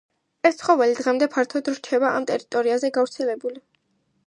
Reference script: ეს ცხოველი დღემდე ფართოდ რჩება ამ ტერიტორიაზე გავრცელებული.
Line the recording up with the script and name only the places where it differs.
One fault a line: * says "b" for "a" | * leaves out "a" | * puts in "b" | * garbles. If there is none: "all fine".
all fine